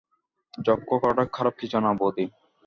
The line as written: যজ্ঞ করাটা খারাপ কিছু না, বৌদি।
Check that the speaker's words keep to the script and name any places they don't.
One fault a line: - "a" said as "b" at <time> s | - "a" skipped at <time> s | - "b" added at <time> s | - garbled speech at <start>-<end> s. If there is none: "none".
none